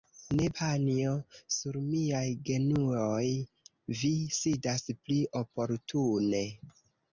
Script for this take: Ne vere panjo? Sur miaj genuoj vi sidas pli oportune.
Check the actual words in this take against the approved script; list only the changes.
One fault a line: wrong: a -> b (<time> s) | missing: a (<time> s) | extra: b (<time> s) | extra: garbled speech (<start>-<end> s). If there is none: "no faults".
missing: vere (0.5 s)